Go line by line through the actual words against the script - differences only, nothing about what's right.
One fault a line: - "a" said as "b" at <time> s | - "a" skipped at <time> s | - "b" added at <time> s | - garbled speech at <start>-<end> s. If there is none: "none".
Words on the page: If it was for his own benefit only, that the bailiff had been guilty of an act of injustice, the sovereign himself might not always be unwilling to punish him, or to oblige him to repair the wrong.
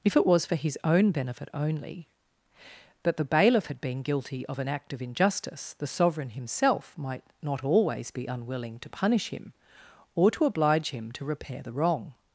none